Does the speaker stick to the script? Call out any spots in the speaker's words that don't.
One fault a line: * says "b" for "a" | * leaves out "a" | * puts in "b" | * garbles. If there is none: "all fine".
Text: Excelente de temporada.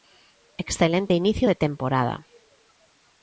* puts in "inicio"